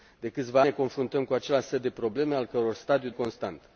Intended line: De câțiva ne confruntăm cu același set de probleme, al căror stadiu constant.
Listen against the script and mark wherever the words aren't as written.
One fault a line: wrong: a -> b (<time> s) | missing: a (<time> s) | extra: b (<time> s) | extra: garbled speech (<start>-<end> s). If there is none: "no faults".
no faults